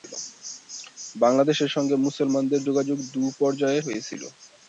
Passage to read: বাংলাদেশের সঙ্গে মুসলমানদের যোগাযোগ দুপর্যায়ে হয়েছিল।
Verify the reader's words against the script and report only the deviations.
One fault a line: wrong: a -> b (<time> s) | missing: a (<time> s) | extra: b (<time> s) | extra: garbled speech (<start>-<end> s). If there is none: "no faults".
no faults